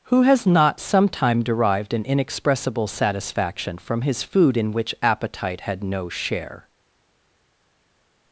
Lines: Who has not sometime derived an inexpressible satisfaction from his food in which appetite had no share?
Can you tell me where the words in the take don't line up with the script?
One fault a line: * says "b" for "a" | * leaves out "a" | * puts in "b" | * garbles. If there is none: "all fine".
all fine